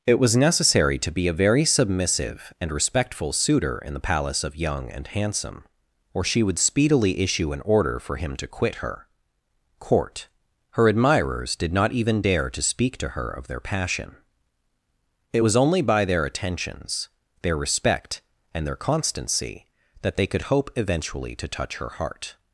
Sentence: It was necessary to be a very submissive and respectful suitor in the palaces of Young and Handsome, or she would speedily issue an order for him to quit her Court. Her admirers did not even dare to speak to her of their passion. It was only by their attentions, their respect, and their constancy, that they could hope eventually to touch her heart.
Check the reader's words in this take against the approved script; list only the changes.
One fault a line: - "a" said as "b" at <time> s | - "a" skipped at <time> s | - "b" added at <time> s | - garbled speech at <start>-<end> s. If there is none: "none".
- "palaces" said as "palace" at 4.0 s